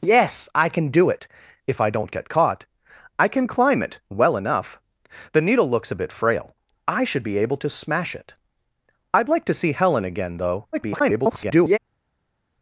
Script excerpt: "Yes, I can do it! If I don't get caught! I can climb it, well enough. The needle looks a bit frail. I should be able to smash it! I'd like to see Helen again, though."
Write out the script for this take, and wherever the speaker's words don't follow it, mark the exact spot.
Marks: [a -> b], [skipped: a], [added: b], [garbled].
"Yes, I can do it! If I don't get caught! I can climb it, well enough. The needle looks a bit frail. I should be able to smash it! I'd like to see Helen again, though." [garbled]